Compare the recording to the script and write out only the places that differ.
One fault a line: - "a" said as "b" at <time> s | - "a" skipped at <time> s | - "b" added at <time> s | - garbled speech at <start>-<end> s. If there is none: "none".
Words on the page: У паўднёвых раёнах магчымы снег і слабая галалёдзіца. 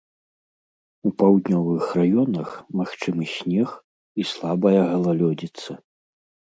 none